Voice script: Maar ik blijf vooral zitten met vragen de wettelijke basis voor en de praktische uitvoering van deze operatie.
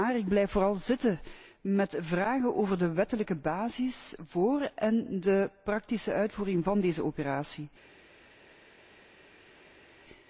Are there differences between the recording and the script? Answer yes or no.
yes